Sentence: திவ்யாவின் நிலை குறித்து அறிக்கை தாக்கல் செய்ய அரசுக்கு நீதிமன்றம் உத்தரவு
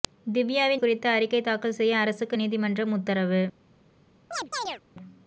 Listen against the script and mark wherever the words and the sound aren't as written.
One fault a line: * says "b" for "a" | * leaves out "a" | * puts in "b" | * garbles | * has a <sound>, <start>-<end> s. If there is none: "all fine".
* leaves out "நிலை"
* has a chirp, 4.3-4.8 s